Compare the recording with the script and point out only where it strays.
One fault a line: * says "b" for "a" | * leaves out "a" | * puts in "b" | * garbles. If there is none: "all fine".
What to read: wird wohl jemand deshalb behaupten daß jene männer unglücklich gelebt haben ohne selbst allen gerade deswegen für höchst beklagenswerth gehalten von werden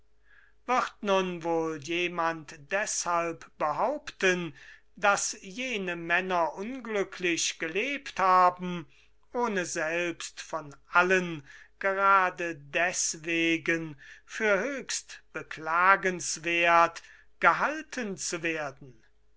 * puts in "nun"
* puts in "von"
* says "zu" for "von"